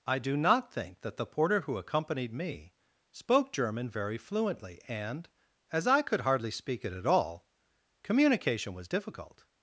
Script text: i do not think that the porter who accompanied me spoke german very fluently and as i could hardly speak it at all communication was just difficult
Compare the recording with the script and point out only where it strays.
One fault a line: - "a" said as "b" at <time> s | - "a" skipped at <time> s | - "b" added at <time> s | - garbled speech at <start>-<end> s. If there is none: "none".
- "just" skipped at 8.9 s